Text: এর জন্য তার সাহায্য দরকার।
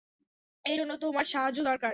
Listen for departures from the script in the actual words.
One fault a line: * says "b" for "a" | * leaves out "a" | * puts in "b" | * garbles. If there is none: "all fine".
* says "তোমার" for "তার"